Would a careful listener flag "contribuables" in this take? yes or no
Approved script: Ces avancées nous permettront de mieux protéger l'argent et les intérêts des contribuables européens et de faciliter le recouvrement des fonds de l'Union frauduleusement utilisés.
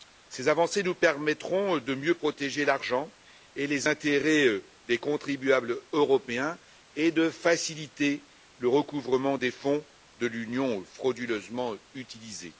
no